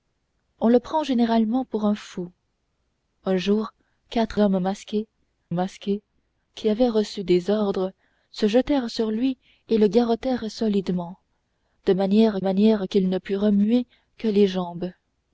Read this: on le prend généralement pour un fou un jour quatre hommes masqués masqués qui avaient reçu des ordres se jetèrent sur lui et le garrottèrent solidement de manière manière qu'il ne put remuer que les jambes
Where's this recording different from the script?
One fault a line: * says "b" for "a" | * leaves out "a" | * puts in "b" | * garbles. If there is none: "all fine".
all fine